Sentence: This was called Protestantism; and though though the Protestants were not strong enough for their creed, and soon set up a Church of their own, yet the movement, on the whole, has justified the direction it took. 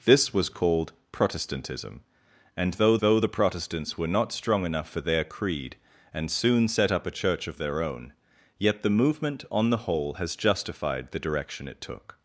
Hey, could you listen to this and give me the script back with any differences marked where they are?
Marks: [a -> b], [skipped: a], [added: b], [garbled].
This was called Protestantism; and though though the Protestants were not strong enough for their creed, and soon set up a Church of their own, yet the movement, on the whole, has justified the direction it took.